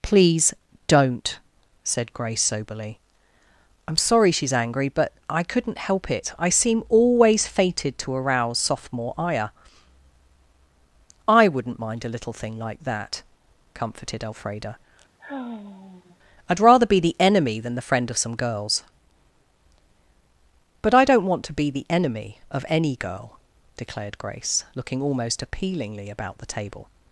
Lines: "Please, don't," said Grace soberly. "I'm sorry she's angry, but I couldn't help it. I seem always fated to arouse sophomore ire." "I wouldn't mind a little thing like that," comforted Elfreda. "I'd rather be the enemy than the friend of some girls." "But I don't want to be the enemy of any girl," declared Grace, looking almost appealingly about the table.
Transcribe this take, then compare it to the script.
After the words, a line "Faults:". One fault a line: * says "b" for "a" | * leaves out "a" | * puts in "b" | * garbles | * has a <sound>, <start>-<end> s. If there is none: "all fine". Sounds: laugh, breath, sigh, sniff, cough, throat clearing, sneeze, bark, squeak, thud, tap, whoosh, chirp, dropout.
"Please, don't," said Grace soberly. "I'm sorry she's angry, but I couldn't help it. I seem always fated to arouse sophomore ire." "I wouldn't mind a little thing like that," comforted Elfreda. "I'd rather be the enemy than the friend of some girls." "But I don't want to be the enemy of any girl," declared Grace, looking almost appealingly about the table.
Faults:
* has a sigh, 15.2-16.2 s